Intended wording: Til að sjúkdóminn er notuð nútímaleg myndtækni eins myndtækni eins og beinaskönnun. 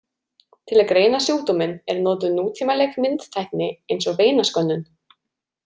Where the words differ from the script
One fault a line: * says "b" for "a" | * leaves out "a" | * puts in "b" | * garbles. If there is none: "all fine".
* puts in "greina"
* leaves out "myndtækni eins"